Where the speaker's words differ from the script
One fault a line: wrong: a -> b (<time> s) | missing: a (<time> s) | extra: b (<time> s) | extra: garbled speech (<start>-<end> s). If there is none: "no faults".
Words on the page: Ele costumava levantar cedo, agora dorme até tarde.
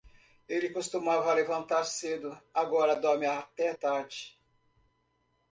no faults